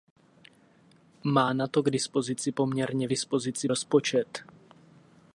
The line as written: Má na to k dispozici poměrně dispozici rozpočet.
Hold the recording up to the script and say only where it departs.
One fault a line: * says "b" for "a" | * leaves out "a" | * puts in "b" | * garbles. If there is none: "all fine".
all fine